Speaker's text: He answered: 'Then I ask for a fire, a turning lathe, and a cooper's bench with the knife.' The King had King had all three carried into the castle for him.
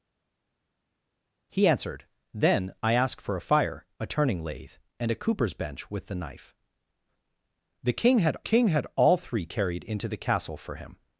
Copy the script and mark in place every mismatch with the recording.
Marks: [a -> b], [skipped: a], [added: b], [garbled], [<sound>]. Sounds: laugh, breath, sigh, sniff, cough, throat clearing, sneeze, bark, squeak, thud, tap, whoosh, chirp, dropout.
He answered: 'Then I ask for a fire, a turning lathe, and a cooper's bench with the knife.' The King had King had all three carried into the castle for him.